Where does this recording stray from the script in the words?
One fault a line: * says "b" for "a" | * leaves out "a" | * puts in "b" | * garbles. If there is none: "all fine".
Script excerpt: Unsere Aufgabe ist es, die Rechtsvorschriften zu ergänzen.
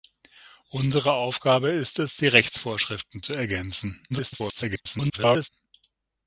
* garbles